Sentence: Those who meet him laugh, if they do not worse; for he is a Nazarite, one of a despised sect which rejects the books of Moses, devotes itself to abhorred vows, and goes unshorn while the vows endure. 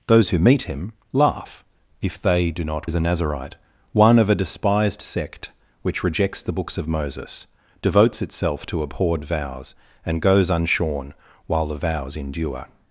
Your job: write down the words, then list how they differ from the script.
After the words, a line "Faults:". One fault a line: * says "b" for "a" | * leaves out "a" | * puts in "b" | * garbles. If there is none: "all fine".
Those who meet him laugh, if they do not is a Nazarite, one of a despised sect which rejects the books of Moses, devotes itself to abhorred vows, and goes unshorn while the vows endure.
Faults:
* leaves out "worse for he"